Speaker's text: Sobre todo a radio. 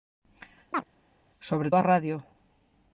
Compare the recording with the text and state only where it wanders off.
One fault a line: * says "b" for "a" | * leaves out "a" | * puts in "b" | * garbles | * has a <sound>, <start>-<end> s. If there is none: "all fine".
* has a chirp, 0.7-0.8 s
* leaves out "todo"